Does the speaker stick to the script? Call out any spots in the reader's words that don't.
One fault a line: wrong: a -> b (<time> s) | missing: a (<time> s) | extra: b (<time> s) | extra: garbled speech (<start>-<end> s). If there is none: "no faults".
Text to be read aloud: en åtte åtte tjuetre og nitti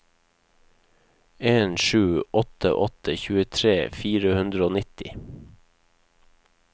extra: sju (1.8 s)
extra: fire hundre (4.0 s)